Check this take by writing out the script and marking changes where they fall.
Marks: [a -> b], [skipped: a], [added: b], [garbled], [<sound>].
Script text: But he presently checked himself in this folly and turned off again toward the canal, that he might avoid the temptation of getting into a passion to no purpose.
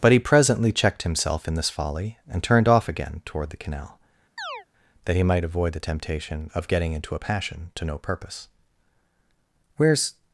But he presently checked himself in this folly and turned off again toward the canal, [chirp] that he might avoid the temptation of getting into a passion to no purpose. [added: Where's]